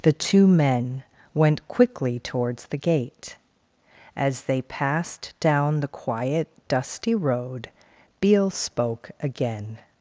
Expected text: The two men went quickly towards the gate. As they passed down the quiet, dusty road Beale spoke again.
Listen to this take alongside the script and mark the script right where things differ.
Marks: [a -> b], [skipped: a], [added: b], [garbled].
The two men went quickly towards the gate. As they passed down the quiet, dusty road Beale spoke again.